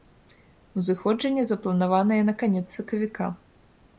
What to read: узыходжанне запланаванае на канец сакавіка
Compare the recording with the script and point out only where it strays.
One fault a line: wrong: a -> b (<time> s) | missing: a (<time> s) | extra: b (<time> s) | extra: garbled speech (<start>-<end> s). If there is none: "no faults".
no faults